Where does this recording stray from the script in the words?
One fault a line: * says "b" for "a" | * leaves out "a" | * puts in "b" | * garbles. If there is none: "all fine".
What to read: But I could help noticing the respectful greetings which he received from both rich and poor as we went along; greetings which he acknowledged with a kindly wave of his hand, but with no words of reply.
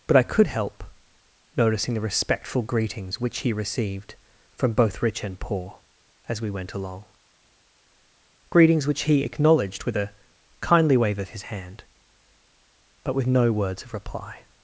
all fine